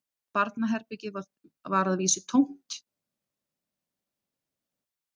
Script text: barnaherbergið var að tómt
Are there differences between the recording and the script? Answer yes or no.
yes